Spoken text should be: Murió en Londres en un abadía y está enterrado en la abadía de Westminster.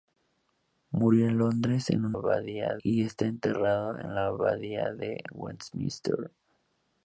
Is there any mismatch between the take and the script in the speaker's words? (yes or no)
no